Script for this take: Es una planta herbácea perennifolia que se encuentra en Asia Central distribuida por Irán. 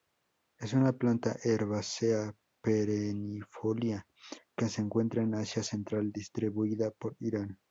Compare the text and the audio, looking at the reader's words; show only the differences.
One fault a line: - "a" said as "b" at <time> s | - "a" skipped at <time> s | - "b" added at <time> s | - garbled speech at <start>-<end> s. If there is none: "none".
none